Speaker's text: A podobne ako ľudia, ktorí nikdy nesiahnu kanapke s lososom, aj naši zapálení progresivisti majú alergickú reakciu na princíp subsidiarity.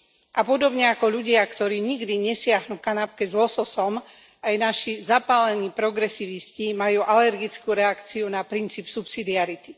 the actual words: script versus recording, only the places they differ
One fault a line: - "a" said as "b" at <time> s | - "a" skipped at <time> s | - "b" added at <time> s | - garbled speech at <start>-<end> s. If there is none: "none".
none